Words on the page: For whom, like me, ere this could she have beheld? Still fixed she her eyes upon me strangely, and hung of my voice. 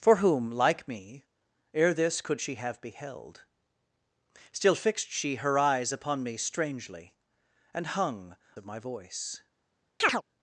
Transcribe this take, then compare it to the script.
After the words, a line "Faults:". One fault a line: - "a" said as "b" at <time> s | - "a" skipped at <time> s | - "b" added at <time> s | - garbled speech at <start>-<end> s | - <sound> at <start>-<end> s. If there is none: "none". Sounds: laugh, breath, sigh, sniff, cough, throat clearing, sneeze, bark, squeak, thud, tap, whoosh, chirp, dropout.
For whom, like me, ere this could she have beheld? Still fixed she her eyes upon me strangely, and hung of my voice.
Faults:
- chirp at 10.0-10.2 s